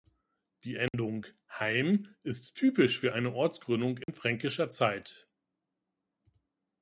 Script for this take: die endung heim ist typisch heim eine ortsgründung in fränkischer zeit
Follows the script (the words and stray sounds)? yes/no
no